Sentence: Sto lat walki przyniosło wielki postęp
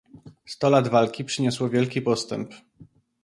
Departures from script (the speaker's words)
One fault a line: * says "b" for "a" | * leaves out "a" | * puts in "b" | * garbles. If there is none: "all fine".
all fine